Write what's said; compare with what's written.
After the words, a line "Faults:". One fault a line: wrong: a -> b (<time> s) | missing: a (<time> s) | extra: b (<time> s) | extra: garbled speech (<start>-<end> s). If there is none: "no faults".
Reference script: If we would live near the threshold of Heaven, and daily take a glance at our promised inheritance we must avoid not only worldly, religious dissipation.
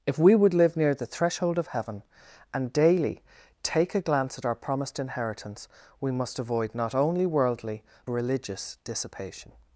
If we would live near the threshold of Heaven, and daily take a glance at our promised inheritance we must avoid not only worldly, religious dissipation.
Faults:
no faults